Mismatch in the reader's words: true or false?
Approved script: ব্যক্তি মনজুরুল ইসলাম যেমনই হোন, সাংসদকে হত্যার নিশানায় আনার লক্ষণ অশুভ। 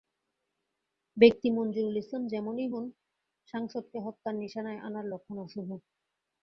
false